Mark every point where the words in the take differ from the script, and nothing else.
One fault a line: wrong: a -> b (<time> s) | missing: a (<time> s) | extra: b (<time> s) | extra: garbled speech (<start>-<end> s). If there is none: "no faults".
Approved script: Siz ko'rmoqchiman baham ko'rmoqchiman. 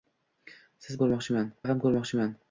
no faults